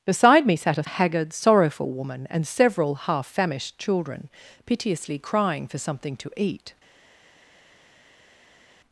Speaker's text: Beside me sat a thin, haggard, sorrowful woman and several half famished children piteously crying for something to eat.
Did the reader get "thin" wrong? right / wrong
wrong